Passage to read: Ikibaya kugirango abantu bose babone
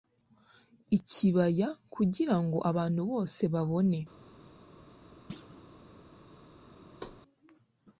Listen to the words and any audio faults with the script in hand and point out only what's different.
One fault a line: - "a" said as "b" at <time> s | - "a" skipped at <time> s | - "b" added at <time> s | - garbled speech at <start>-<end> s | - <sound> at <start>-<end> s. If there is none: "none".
- thud at 5.3-5.6 s
- thud at 7.0-7.2 s